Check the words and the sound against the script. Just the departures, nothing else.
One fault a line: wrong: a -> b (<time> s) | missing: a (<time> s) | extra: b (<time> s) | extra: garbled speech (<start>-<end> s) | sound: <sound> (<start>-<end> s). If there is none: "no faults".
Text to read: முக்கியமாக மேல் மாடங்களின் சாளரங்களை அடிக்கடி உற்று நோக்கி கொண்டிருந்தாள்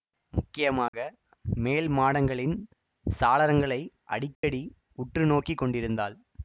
sound: dropout (0.9-0.9 s)
sound: dropout (4.3-4.4 s)